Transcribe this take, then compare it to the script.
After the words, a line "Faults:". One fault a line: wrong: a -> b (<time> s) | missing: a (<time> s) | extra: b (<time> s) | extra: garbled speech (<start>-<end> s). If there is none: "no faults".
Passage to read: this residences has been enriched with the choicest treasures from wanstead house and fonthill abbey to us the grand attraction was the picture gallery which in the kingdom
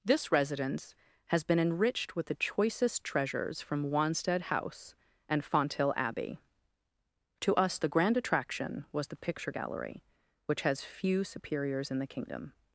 this residence has been enriched with the choicest treasures from wanstead house and fonthill abbey to us the grand attraction was the picture gallery which has few superiors in the kingdom
Faults:
wrong: residences -> residence (0.3 s)
extra: has few superiors (10.6 s)